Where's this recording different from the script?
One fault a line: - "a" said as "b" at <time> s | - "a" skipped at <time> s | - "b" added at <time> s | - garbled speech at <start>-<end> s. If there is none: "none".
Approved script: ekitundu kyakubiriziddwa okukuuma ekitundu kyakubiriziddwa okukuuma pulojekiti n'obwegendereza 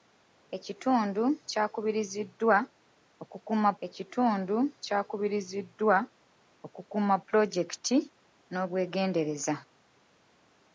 none